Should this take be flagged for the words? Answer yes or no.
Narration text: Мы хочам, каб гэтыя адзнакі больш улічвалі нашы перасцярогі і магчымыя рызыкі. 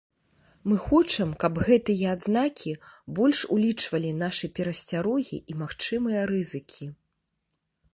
no